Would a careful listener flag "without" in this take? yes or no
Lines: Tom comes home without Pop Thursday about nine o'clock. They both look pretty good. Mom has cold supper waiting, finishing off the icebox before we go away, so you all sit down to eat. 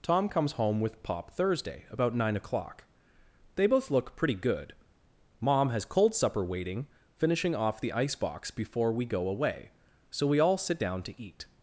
yes